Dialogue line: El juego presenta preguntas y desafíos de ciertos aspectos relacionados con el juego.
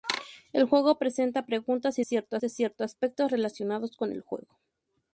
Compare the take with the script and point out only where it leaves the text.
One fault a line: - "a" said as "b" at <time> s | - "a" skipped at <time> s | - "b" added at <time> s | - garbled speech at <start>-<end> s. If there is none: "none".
- "desafíos" said as "ciertos" at 2.0 s